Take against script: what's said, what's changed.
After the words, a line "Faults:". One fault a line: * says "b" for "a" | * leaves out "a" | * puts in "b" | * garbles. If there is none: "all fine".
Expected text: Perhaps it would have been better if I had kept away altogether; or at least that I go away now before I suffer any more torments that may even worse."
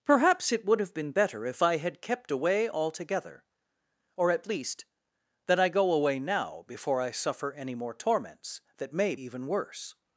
Perhaps it would have been better if I had kept away altogether; or at least that I go away now before I suffer any more torments that may even worse."
Faults:
all fine